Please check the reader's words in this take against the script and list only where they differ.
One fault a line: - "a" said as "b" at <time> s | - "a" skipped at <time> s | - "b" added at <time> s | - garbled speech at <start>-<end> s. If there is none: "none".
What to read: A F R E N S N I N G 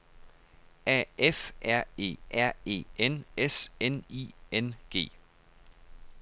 - "R E" added at 2.3 s